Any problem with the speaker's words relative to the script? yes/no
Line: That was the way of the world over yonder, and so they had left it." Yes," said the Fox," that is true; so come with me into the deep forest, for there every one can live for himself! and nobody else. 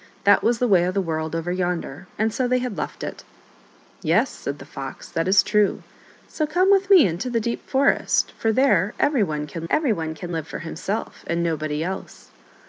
yes